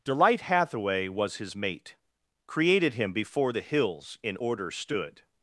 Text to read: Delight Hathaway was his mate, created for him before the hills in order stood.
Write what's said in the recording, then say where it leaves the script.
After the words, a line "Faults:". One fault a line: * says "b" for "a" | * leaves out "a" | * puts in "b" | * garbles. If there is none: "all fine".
Delight Hathaway was his mate, created him before the hills in order stood.
Faults:
* leaves out "for"